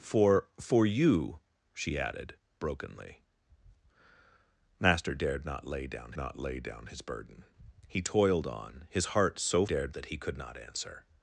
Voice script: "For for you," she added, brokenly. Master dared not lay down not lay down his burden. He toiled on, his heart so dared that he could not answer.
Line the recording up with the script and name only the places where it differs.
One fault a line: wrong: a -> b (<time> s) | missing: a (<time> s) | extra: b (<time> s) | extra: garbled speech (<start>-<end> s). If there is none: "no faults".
no faults